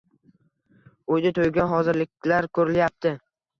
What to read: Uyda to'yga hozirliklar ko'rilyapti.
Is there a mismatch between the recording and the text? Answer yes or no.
no